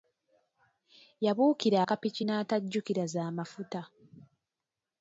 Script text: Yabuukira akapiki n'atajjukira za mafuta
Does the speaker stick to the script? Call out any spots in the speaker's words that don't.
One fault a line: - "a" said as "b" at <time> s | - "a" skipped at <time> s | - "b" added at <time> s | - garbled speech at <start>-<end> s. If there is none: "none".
none